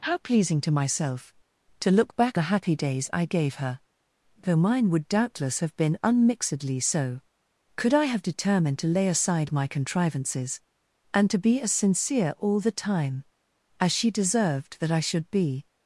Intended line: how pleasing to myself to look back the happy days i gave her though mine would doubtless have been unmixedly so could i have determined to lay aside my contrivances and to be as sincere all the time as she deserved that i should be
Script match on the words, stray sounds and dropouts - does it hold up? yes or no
yes